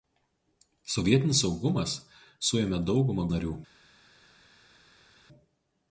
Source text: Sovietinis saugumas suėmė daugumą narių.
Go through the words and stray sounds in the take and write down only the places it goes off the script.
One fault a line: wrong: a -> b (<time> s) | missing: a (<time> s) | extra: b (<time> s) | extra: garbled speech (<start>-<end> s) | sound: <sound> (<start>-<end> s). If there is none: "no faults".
no faults